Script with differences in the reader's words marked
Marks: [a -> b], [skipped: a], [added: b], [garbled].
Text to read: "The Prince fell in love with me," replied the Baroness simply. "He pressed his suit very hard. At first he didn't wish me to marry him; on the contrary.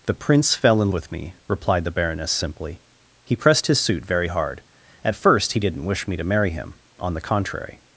"The Prince fell in [skipped: love] with me," replied the Baroness simply. "He pressed his suit very hard. At first he didn't wish me to marry him; on the contrary.